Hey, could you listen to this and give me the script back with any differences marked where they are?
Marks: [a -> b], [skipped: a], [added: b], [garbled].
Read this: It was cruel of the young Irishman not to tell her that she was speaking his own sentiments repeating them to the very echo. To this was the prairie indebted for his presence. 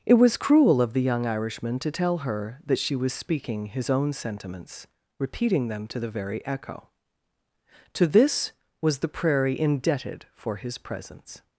It was cruel of the young Irishman [skipped: not] to tell her that she was speaking his own sentiments repeating them to the very echo. To this was the prairie indebted for his presence.